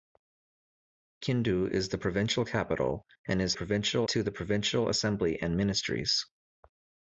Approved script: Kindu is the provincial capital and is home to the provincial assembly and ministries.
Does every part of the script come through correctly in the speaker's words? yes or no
no